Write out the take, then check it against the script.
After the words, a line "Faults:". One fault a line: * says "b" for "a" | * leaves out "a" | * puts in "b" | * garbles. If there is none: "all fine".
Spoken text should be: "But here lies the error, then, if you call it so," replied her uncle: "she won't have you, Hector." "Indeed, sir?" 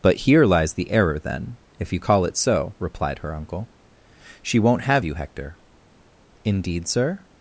"But here lies the error, then, if you call it so," replied her uncle: "she won't have you, Hector." "Indeed, sir?"
Faults:
all fine